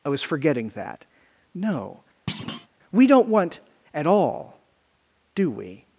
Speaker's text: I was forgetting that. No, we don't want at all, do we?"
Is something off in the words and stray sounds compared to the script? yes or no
yes